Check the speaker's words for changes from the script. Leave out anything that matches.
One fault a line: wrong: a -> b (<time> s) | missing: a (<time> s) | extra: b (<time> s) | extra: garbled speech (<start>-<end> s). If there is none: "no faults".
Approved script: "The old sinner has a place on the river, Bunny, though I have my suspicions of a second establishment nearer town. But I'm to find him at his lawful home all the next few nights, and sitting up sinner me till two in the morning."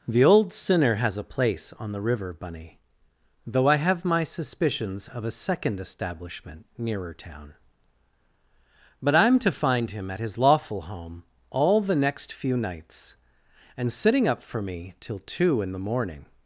wrong: sinner -> for (14.4 s)